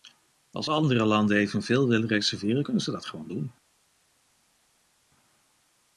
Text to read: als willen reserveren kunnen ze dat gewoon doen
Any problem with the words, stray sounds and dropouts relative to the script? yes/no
yes